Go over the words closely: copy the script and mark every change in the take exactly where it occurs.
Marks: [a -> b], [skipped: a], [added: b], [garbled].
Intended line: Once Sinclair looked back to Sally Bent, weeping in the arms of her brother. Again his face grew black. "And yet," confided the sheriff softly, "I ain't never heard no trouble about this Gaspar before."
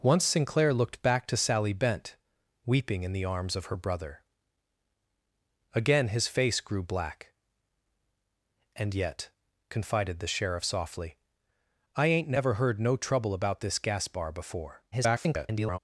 Once Sinclair looked back to Sally Bent, weeping in the arms of her brother. Again his face grew black. "And yet," confided the sheriff softly, "I ain't never heard no trouble about this Gaspar before." [garbled]